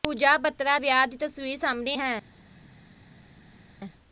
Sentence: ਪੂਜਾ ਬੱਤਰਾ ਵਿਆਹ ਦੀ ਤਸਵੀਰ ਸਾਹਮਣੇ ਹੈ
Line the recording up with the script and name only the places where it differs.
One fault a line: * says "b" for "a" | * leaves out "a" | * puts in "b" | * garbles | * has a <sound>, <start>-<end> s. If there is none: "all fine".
all fine